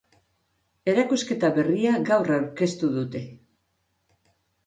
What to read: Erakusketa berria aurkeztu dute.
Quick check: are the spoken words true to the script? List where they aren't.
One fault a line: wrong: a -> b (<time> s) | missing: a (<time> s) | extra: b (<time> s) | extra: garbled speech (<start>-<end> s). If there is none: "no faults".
extra: gaur (2.1 s)